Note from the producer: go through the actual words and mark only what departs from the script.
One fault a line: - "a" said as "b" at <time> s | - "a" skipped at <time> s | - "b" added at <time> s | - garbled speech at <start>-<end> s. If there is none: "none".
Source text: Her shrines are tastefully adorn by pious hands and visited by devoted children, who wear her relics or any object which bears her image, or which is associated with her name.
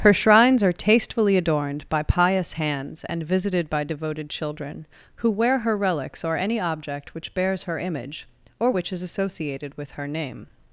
- "adorn" said as "adorned" at 1.4 s